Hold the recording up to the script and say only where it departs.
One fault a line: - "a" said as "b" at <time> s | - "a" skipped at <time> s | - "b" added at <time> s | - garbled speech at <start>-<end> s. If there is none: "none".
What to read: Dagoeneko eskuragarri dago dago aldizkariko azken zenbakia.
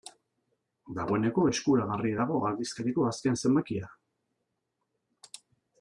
- "dago" skipped at 2.4 s